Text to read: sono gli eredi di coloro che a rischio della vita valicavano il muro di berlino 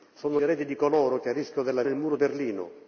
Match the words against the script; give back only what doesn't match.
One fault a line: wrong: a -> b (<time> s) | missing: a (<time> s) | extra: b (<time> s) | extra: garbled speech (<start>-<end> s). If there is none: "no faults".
missing: gli (0.4 s)
missing: vita valicavano (1.8 s)
missing: di (2.2 s)